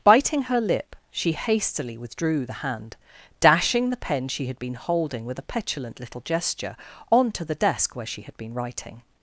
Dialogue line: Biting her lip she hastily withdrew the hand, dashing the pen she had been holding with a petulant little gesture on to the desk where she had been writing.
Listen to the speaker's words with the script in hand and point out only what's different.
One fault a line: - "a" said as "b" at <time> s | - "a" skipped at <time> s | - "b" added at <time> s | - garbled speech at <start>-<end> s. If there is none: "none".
none